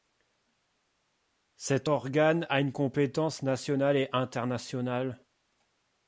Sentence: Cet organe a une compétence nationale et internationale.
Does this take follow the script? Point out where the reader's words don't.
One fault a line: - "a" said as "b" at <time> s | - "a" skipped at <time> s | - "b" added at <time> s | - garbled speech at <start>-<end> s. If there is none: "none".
none